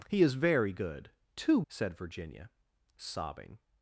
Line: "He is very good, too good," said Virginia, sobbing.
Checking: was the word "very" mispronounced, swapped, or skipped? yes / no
no